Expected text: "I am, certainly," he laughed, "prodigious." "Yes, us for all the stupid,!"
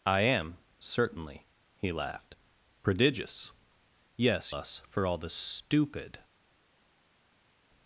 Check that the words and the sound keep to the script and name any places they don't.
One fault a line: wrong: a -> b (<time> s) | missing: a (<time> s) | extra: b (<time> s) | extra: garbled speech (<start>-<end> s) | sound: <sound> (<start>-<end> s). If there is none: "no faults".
no faults